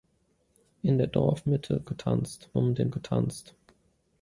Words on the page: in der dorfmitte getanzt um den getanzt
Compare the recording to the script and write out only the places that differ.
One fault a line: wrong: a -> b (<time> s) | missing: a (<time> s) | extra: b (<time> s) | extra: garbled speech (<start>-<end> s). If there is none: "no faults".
no faults